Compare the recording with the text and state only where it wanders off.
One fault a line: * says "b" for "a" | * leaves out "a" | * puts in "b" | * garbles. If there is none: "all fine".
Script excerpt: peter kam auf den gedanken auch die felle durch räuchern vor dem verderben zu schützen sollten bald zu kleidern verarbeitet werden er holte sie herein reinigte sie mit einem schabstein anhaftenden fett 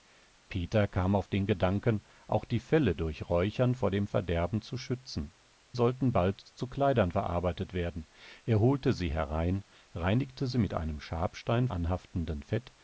all fine